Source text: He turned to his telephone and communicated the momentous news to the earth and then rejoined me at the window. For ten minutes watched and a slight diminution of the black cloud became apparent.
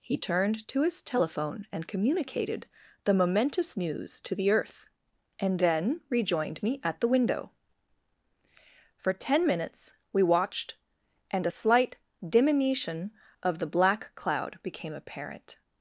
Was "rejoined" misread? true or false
false